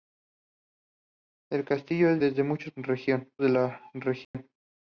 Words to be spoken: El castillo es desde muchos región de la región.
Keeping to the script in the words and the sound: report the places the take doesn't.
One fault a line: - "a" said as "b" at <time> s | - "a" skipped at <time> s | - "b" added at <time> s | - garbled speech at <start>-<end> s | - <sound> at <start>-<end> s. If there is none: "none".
- dropout at 4.2-4.3 s